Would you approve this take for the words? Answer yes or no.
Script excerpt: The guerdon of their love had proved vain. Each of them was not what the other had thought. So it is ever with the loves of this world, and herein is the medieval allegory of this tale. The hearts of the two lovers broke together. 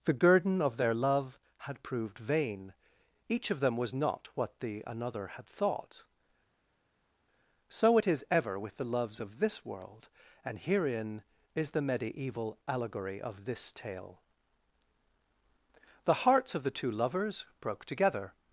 no